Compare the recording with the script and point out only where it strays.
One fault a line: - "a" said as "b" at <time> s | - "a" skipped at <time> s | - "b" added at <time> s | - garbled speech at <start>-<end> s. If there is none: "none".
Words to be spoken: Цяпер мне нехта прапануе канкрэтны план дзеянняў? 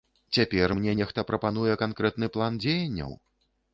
none